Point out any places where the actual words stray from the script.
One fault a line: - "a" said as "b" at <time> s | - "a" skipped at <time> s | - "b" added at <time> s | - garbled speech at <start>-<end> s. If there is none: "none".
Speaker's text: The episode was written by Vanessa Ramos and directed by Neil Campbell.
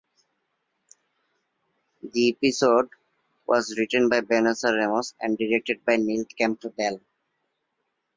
none